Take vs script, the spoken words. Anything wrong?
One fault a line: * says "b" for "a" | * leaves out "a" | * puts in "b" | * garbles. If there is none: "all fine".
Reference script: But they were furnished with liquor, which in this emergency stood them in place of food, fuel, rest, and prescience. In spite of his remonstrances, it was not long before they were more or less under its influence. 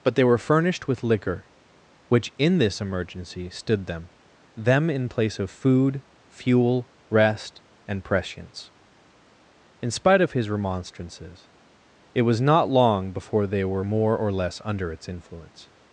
* puts in "them"